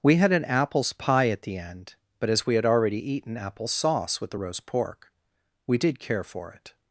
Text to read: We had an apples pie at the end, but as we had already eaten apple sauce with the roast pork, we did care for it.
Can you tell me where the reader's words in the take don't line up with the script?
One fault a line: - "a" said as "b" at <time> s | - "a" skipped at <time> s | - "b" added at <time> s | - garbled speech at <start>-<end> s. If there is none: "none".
none